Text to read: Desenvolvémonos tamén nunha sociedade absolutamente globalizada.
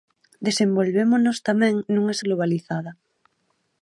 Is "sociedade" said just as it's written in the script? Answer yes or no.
no